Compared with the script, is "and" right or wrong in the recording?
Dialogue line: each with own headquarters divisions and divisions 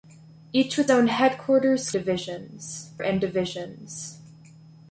right